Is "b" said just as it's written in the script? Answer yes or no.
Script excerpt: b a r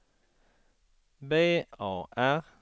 yes